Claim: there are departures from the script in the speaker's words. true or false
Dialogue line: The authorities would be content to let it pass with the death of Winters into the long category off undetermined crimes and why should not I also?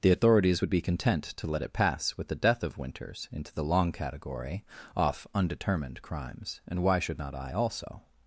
false